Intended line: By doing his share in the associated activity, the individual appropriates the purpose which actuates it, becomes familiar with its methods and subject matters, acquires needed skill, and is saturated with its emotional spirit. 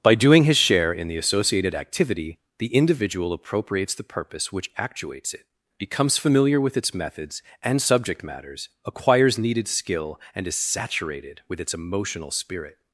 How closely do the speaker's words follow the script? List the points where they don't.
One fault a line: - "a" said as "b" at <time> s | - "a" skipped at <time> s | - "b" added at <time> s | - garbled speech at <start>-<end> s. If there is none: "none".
none